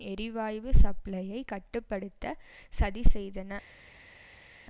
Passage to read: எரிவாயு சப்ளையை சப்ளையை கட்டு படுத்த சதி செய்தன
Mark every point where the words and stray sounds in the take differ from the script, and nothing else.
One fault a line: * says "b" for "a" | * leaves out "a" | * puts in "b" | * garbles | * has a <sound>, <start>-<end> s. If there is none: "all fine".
* leaves out "சப்ளையை"